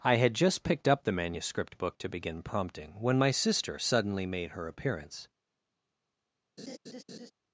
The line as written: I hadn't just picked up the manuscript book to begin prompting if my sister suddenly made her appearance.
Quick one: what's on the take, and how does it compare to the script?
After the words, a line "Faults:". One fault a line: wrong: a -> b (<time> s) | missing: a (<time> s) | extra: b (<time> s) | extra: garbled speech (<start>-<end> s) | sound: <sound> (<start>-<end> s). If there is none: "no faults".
I had just picked up the manuscript book to begin prompting when my sister suddenly made her appearance.
Faults:
wrong: hadn't -> had (0.1 s)
wrong: if -> when (3.0 s)
sound: laugh (6.6-7.3 s)